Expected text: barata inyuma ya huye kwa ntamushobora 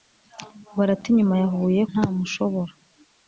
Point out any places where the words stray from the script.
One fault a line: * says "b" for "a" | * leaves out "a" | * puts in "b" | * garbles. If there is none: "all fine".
* leaves out "kwa"